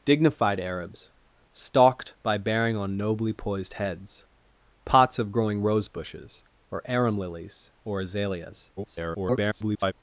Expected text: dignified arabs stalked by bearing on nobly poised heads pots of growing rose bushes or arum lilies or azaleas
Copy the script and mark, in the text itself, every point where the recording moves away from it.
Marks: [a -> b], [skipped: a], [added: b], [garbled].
dignified arabs stalked by bearing on nobly poised heads pots of growing rose bushes or arum lilies or azaleas [garbled]